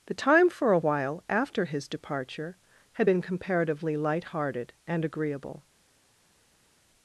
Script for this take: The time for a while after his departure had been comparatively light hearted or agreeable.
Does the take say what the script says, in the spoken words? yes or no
no